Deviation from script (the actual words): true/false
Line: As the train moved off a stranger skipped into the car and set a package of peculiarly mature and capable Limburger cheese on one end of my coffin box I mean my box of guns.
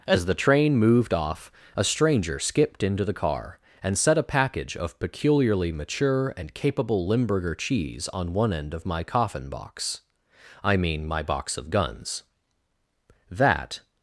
true